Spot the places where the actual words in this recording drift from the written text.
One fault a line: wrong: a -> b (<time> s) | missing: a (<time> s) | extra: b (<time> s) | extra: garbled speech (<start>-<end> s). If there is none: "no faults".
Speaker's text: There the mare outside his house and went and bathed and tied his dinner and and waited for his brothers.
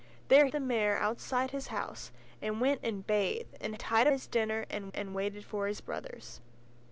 no faults